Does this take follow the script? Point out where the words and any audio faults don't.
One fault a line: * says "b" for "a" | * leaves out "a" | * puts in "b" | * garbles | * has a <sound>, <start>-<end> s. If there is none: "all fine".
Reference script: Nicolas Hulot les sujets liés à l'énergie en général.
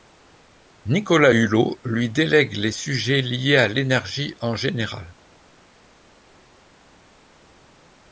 * puts in "lui délègue"